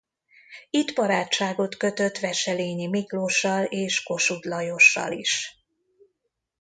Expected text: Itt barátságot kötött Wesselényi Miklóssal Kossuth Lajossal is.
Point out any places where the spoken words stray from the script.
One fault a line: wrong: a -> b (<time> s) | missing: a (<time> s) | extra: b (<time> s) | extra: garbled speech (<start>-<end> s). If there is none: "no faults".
extra: és (3.6 s)